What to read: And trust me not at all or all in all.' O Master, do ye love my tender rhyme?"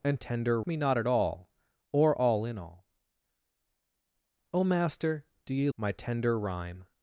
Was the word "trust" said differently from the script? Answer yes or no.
yes